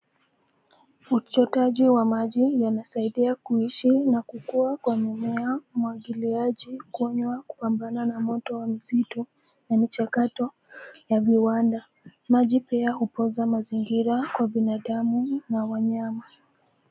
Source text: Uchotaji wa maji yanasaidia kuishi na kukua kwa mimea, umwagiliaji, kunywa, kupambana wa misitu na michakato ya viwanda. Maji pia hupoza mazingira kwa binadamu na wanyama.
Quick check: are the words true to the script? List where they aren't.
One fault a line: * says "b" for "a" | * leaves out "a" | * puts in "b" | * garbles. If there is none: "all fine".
* puts in "na moto"